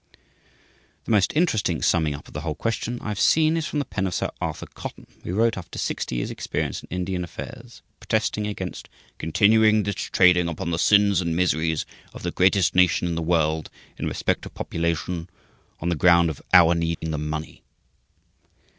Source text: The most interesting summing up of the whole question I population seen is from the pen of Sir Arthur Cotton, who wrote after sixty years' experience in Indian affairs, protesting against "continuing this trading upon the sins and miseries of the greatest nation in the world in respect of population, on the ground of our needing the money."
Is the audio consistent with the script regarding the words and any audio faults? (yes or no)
no